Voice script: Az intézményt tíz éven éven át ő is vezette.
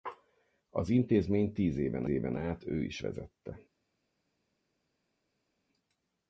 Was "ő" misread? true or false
false